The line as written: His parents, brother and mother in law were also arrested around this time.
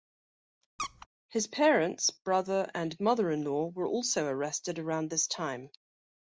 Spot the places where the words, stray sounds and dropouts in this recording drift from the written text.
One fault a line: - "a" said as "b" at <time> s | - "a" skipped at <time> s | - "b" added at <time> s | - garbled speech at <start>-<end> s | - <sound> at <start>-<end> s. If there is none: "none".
- squeak at 0.8-1.1 s